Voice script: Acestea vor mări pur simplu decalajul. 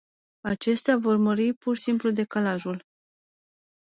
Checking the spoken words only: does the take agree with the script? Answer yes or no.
yes